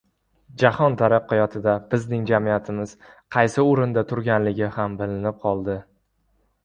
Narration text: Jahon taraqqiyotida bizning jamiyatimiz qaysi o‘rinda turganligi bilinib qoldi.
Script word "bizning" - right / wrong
right